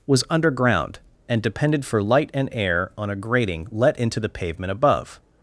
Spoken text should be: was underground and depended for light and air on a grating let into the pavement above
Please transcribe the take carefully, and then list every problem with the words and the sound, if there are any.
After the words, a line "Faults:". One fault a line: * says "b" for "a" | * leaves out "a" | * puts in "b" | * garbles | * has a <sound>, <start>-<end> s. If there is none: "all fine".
was underground and depended for light and air on a grating let into the pavement above
Faults:
all fine